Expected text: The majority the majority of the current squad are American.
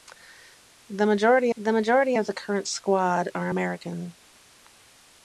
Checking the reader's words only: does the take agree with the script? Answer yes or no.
yes